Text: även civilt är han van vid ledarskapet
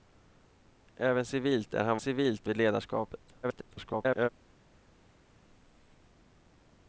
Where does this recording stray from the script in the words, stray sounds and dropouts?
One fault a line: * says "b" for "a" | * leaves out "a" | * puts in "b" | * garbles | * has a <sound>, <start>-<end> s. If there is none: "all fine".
* says "civilt" for "van"
* garbles